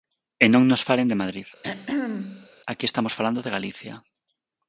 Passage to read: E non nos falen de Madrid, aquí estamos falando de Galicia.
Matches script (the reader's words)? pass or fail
pass